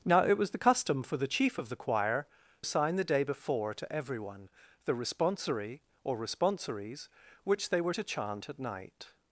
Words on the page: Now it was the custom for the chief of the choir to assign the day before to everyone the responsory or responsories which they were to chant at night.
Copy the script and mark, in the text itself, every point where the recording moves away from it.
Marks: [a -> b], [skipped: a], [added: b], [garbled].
Now it was the custom for the chief of the choir [skipped: to] assign the day before to everyone the responsory or responsories which they were to chant at night.